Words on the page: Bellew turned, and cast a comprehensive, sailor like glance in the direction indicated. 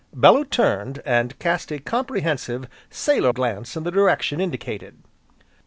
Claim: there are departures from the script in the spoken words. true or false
true